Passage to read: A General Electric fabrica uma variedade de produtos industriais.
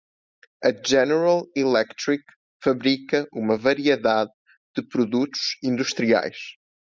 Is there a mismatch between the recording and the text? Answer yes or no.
no